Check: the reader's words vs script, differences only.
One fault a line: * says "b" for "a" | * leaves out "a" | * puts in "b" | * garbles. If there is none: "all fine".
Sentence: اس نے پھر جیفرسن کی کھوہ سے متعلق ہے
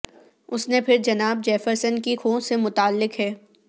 * puts in "جناب"